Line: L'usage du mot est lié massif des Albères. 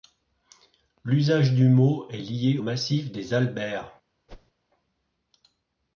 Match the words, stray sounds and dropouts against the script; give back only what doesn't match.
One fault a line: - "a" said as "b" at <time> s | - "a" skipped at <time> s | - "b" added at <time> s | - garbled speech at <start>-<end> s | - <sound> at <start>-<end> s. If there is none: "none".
- whoosh at 4.3-4.5 s